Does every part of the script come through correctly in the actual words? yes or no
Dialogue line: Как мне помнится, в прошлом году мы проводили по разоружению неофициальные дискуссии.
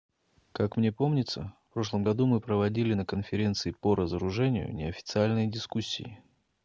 no